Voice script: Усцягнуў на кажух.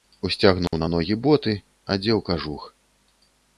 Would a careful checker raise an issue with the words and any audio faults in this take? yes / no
yes